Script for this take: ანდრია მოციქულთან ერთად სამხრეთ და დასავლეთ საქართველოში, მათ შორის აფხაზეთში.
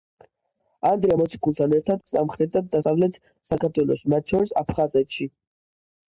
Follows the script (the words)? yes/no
yes